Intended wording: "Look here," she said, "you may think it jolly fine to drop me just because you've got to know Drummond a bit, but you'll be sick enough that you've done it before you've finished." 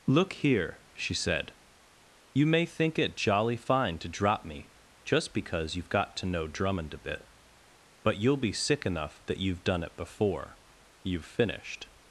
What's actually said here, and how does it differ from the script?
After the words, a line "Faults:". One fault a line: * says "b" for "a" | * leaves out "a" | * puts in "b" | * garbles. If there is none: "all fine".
"Look here," she said, "you may think it jolly fine to drop me just because you've got to know Drummond a bit, but you'll be sick enough that you've done it before you've finished."
Faults:
all fine